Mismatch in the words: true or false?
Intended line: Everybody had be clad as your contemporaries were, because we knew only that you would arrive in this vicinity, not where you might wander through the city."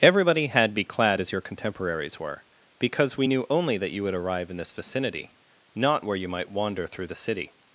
false